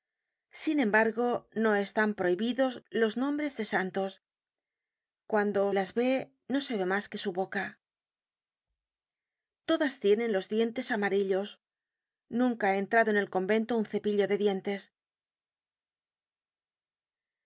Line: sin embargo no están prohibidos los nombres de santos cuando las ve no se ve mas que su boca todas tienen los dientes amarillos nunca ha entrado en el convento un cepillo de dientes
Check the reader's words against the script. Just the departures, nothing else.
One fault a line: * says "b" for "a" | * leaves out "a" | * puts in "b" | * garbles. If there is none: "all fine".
all fine